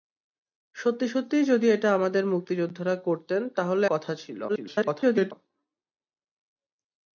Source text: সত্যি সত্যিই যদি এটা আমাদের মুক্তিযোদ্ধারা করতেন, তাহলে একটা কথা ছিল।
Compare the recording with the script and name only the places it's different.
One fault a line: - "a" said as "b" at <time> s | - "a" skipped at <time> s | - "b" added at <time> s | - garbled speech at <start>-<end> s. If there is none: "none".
- "একটা" skipped at 3.9 s
- garbled speech at 4.5-5.3 s